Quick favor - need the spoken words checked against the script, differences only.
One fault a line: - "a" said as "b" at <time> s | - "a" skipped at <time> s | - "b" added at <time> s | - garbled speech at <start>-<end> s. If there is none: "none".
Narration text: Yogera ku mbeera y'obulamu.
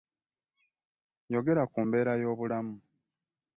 none